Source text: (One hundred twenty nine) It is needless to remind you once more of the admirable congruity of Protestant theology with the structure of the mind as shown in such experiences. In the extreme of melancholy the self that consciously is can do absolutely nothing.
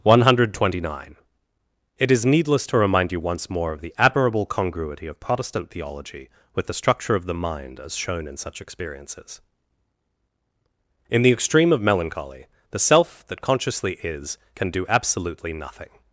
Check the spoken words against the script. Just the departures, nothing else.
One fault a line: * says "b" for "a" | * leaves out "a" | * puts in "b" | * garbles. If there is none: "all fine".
all fine